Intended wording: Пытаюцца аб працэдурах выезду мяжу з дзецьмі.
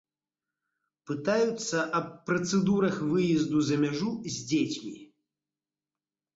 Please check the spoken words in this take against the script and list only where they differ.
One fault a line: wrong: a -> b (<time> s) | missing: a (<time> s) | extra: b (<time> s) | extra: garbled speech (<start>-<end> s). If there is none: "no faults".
extra: за (3.7 s)